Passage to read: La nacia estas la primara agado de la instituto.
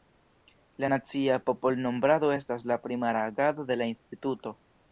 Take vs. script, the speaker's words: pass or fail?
fail